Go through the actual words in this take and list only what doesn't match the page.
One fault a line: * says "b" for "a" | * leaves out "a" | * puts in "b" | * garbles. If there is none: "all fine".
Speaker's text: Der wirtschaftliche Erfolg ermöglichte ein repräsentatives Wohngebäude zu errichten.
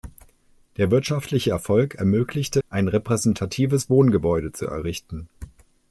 all fine